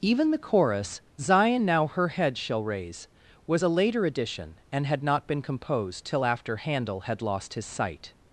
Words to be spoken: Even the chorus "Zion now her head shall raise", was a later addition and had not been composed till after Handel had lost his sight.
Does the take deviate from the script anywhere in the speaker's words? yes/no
no